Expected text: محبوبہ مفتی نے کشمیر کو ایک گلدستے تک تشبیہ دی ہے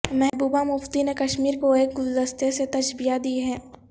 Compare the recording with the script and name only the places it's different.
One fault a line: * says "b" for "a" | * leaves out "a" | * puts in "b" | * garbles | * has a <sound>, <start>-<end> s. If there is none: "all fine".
* says "سے" for "تک"